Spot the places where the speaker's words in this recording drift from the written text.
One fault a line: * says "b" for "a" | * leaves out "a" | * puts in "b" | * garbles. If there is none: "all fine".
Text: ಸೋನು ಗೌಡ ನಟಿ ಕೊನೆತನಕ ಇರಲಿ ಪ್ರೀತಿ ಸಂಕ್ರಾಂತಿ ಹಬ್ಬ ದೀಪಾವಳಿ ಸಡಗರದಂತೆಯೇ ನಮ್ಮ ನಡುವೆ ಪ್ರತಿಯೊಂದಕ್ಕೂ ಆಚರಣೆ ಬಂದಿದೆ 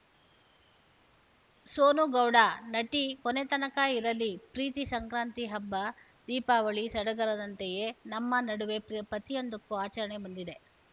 all fine